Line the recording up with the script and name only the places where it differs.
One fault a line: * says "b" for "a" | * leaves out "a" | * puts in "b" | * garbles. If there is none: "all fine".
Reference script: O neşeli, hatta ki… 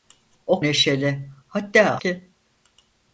all fine